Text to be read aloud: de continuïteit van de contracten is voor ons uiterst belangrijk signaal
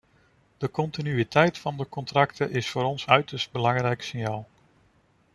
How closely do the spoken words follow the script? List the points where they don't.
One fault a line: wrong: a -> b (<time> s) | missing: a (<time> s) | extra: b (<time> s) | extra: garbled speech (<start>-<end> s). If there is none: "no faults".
no faults